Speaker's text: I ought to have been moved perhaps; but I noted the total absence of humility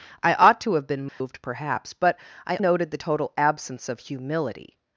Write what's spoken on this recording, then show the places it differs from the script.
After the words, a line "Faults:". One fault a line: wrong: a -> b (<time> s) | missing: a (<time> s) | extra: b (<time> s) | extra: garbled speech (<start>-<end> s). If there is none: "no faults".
I ought to have been moved perhaps; but I noted the total absence of humility
Faults:
no faults